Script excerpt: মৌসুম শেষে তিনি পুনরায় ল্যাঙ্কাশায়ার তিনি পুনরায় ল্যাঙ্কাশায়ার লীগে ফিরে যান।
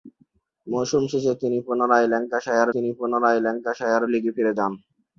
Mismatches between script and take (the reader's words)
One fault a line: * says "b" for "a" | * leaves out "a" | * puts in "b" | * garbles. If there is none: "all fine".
all fine